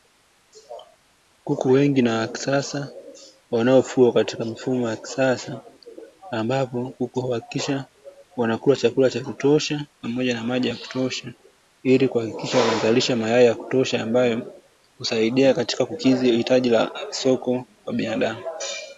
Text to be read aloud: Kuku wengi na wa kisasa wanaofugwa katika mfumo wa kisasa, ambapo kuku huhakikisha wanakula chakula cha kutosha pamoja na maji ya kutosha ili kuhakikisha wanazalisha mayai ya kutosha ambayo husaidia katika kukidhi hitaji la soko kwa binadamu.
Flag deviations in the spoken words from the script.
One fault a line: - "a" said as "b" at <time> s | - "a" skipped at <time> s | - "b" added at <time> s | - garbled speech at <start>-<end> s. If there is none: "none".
none